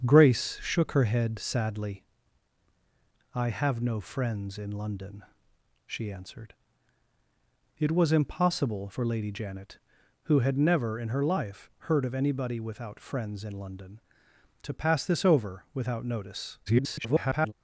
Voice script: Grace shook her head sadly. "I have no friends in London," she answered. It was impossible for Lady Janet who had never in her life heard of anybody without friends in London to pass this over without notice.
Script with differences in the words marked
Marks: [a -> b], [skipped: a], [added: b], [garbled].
Grace shook her head sadly. "I have no friends in London," she answered. It was impossible for Lady Janet who had never in her life heard of anybody without friends in London to pass this over without notice. [garbled]